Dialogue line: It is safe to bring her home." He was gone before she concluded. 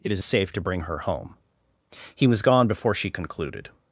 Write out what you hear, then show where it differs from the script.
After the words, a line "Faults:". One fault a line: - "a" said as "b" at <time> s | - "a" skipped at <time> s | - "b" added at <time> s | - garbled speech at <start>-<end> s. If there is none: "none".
It is safe to bring her home." He was gone before she concluded.
Faults:
none